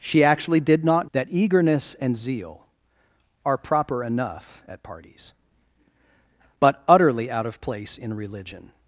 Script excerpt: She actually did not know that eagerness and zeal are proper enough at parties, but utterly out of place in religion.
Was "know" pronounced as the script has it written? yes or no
no